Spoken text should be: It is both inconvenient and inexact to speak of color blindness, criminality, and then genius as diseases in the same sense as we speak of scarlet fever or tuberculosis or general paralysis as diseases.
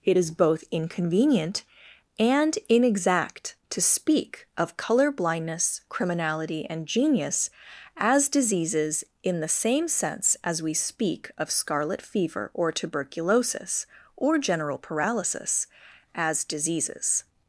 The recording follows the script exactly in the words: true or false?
false